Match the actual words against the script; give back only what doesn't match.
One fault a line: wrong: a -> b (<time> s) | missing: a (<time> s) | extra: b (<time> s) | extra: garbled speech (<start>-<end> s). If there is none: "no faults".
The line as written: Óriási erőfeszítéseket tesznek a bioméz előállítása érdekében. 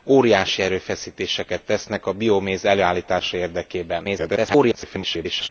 extra: garbled speech (4.0-5.5 s)